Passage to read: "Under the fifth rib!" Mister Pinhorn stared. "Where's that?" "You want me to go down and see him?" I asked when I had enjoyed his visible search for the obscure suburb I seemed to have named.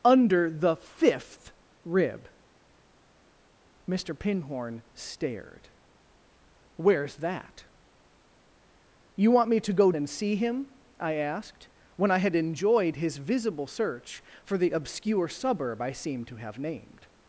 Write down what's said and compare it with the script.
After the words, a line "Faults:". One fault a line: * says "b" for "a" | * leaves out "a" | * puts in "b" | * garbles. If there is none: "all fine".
"Under the fifth rib!" Mister Pinhorn stared. "Where's that?" "You want me to go and see him?" I asked when I had enjoyed his visible search for the obscure suburb I seemed to have named.
Faults:
* leaves out "down"